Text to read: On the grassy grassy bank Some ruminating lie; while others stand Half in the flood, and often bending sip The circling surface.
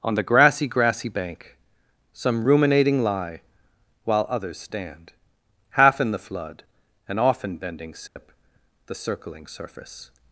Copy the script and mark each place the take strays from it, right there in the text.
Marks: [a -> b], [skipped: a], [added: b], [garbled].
On the grassy grassy bank Some ruminating lie; while others stand Half in the flood, and often bending sip The circling surface.